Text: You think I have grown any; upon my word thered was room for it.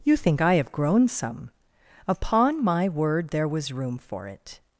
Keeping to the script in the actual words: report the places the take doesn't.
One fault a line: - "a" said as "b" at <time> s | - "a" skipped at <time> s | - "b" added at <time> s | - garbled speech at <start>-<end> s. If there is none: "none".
- "any" said as "some" at 1.1 s
- "thered" said as "there" at 3.3 s